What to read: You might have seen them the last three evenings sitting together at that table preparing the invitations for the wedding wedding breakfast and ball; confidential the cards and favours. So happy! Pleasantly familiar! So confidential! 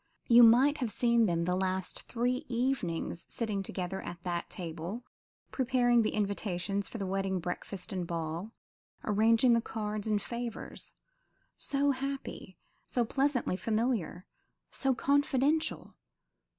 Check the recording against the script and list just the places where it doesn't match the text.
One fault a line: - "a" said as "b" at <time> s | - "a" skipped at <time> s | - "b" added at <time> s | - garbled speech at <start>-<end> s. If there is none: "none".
- "wedding" skipped at 7.4 s
- "confidential" said as "arranging" at 9.0 s
- "So" added at 12.9 s